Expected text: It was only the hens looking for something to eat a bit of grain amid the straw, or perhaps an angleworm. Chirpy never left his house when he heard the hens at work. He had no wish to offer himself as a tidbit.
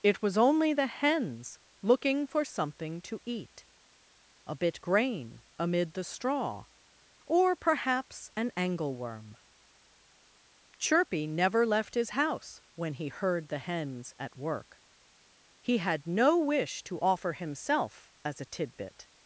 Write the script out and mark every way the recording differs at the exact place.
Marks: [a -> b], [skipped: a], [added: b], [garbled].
It was only the hens looking for something to eat a bit [skipped: of] grain amid the straw, or perhaps an angleworm. Chirpy never left his house when he heard the hens at work. He had no wish to offer himself as a tidbit.